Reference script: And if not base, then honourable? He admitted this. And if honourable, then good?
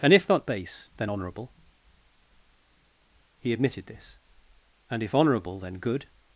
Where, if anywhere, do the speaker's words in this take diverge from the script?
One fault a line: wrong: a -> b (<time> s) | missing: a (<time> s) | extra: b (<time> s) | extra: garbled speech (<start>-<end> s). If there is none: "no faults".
no faults